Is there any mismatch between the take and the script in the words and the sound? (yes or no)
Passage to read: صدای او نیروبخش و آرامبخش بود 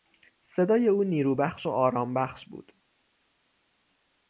no